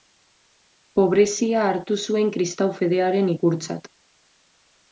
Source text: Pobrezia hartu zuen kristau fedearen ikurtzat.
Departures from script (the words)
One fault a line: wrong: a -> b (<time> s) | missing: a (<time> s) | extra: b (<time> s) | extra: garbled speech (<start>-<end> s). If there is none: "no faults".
no faults